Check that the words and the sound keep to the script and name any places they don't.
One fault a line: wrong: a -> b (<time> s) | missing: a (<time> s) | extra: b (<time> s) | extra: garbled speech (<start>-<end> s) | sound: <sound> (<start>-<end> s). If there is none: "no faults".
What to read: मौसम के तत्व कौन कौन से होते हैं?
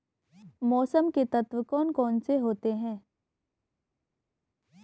no faults